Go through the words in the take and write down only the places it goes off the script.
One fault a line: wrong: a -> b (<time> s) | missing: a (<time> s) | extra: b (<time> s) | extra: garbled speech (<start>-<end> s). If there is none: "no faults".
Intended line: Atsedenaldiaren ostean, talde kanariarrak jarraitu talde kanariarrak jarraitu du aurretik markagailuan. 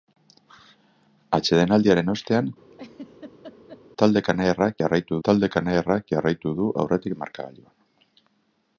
no faults